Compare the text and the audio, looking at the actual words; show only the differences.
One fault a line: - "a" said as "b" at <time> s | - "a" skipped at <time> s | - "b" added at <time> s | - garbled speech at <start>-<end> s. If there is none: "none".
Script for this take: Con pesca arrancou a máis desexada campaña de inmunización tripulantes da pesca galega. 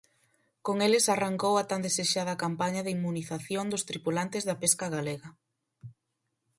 - "pesca" said as "eles" at 0.9 s
- "máis" said as "tan" at 1.7 s
- "dos" added at 3.7 s